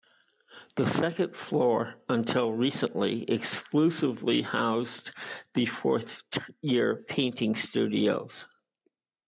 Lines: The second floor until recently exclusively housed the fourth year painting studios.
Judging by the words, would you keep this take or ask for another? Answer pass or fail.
pass